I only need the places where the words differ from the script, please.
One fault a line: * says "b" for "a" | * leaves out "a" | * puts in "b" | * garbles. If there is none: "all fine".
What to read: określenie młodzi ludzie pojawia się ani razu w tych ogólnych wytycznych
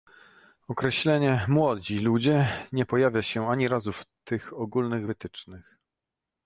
* puts in "nie"